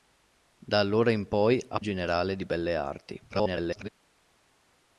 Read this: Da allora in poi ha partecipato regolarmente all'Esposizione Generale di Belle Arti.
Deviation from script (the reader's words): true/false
true